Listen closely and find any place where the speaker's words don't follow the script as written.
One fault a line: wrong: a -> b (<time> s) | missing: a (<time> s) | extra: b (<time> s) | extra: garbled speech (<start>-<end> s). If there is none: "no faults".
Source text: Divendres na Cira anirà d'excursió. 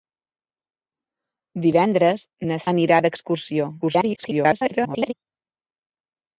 missing: Cira (2.6 s)
extra: garbled speech (3.8-5.1 s)